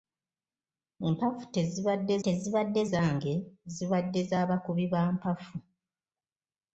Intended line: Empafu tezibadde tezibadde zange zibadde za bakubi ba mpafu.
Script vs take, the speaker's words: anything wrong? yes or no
no